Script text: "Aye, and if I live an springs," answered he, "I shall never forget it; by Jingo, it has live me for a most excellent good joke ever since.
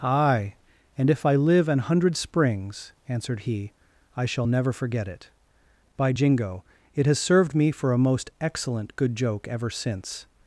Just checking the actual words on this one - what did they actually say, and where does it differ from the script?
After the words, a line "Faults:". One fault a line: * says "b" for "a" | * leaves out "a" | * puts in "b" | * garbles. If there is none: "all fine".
"Aye, and if I live an hundred springs," answered he, "I shall never forget it; by Jingo, it has served me for a most excellent good joke ever since.
Faults:
* puts in "hundred"
* says "served" for "live"